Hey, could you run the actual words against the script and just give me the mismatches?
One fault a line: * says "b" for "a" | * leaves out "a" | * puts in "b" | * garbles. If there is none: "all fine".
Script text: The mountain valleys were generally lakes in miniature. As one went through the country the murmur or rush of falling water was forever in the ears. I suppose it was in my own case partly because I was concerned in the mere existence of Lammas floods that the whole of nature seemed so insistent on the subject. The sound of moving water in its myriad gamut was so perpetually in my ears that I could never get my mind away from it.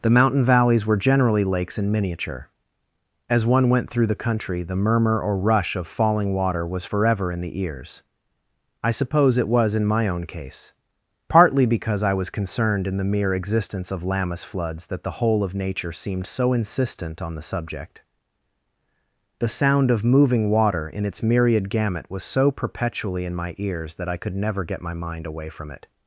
all fine